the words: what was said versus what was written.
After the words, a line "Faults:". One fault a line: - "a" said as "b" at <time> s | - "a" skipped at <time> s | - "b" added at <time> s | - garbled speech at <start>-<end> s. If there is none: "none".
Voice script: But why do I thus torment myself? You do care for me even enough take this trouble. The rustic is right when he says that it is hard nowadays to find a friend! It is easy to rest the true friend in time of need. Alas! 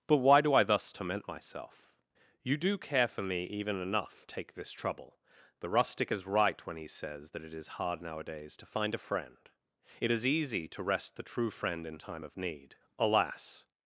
But why do I thus torment myself? You do care for me even enough take this trouble. The rustic is right when he says that it is hard nowadays to find a friend! It is easy to rest the true friend in time of need. Alas!
Faults:
none